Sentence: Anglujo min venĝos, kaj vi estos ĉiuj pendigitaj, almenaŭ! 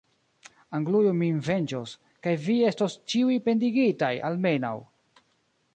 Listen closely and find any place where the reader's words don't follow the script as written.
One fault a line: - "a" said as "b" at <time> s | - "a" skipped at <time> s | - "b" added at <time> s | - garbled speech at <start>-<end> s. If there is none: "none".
none